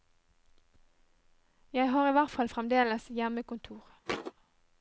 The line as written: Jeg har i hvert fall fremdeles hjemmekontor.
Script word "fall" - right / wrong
right